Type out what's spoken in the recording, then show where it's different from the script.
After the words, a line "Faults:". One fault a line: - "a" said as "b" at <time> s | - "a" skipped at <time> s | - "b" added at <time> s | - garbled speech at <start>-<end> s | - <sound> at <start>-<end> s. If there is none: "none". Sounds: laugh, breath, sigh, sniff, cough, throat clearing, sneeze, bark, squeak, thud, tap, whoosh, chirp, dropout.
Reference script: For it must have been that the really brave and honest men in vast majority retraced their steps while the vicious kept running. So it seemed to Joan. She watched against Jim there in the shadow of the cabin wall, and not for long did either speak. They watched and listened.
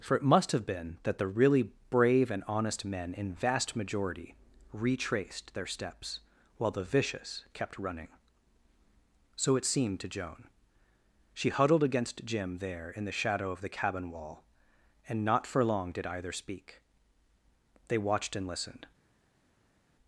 For it must have been that the really brave and honest men in vast majority retraced their steps while the vicious kept running. So it seemed to Joan. She huddled against Jim there in the shadow of the cabin wall, and not for long did either speak. They watched and listened.
Faults:
- "watched" said as "huddled" at 11.5 s